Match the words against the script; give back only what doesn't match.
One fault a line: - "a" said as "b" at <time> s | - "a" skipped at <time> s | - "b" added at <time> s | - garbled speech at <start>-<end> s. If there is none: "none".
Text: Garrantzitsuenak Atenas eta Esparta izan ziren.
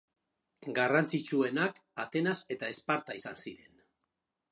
none